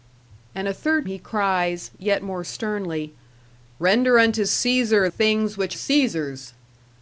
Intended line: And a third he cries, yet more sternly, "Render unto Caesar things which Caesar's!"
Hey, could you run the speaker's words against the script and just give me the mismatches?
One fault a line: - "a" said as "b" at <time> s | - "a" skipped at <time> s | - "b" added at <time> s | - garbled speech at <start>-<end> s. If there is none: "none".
none